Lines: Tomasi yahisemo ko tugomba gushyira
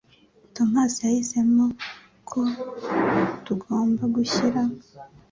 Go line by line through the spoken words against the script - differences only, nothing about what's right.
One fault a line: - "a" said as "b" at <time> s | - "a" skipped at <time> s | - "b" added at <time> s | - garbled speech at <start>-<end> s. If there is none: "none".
none